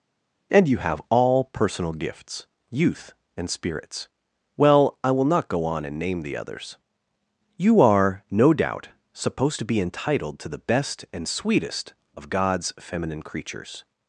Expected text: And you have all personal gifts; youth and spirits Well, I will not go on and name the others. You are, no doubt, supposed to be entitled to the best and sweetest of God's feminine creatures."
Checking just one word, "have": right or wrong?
right